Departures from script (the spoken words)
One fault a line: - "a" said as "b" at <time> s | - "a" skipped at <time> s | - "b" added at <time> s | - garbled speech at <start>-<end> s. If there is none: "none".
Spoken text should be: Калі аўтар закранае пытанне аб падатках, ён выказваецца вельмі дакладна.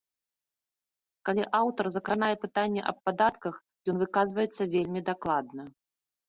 none